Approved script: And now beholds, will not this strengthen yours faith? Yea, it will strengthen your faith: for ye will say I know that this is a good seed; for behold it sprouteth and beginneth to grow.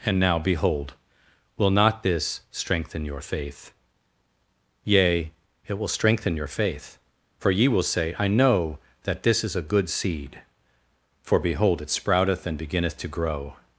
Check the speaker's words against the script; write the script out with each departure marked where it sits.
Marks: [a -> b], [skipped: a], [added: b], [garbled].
And now [beholds, -> behold] will not this strengthen [yours -> your] faith? Yea, it will strengthen your faith: for ye will say I know that this is a good seed; for behold it sprouteth and beginneth to grow.